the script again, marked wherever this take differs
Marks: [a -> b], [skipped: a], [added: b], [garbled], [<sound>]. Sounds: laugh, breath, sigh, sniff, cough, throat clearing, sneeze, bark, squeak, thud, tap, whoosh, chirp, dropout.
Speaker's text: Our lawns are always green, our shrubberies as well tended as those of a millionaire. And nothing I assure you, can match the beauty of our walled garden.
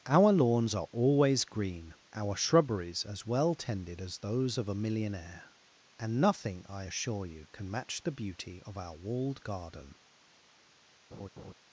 Our lawns are always green, our shrubberies as well tended as those of a millionaire. And nothing I assure you, can match the beauty of our walled garden. [laugh]